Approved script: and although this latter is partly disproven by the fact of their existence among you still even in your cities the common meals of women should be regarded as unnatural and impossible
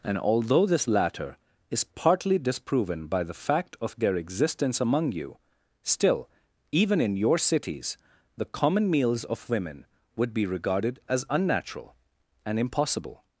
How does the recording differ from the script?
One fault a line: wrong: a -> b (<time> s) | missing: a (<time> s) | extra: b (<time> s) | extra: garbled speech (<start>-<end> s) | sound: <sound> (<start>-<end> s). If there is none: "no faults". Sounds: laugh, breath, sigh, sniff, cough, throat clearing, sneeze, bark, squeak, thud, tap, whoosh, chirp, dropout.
wrong: should -> would (10.2 s)